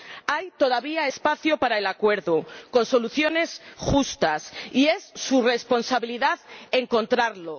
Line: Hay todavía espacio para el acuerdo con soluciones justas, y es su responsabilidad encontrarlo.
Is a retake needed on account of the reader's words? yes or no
no